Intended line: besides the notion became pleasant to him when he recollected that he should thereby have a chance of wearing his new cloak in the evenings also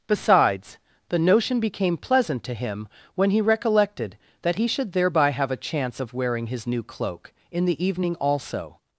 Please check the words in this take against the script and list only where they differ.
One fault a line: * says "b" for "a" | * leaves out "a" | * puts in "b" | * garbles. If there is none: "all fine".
* says "evening" for "evenings"